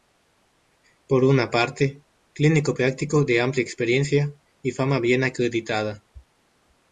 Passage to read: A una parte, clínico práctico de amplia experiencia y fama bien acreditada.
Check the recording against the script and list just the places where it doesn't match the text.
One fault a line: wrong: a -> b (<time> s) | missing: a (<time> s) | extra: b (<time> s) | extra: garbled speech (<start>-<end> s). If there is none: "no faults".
wrong: A -> Por (1.1 s)